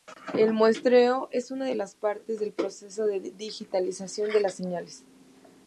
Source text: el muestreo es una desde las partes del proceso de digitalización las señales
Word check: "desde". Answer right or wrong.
wrong